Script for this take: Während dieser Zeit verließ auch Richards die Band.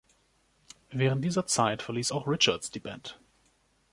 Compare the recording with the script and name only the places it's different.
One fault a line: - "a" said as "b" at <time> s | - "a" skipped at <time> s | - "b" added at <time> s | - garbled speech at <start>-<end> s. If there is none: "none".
none